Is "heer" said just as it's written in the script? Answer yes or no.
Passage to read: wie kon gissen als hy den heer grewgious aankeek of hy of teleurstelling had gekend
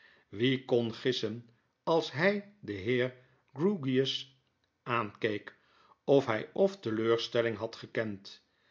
yes